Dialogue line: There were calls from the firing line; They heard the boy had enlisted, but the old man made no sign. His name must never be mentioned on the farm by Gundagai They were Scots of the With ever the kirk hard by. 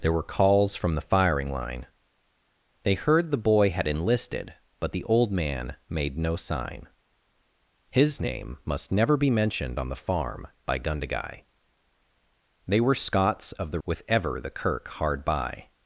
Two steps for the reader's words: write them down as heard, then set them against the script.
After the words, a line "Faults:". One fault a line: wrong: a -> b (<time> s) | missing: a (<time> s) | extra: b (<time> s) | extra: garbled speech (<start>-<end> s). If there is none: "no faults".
There were calls from the firing line; They heard the boy had enlisted, but the old man made no sign. His name must never be mentioned on the farm by Gundagai They were Scots of the With ever the kirk hard by.
Faults:
no faults